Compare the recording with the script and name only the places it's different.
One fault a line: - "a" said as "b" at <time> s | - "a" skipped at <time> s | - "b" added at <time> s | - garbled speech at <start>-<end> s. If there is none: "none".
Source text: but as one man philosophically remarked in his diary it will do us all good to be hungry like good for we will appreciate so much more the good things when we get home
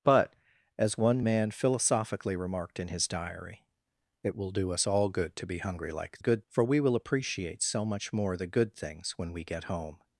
none